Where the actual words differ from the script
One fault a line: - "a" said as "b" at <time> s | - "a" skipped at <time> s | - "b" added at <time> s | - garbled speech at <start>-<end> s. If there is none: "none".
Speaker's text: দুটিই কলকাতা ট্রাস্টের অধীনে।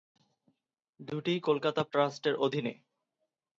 none